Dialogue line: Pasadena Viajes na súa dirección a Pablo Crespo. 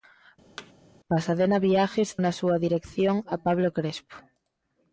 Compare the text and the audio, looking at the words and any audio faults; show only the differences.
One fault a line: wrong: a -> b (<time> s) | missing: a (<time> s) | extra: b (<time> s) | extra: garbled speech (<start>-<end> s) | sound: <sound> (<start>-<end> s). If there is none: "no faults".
sound: thud (0.6-0.7 s)